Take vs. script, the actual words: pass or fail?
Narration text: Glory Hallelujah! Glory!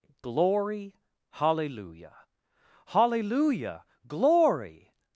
fail